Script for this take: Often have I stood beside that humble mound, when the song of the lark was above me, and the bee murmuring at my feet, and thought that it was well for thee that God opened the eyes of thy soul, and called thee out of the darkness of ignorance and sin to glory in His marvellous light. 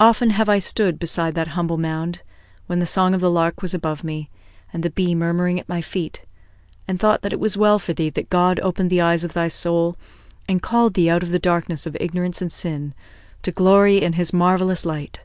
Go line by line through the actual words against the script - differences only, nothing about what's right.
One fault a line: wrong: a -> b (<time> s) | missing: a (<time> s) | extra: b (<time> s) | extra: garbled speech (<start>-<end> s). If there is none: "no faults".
no faults